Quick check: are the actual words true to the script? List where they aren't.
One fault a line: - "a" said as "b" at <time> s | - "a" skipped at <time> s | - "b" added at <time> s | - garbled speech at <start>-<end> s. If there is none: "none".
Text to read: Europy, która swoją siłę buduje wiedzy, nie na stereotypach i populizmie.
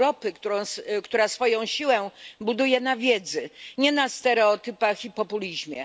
- "na" added at 2.8 s